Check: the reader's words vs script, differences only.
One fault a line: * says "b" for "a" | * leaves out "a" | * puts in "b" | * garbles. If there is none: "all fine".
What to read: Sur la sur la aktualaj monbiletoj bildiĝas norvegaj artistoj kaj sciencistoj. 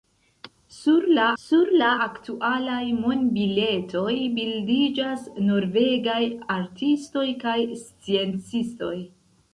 all fine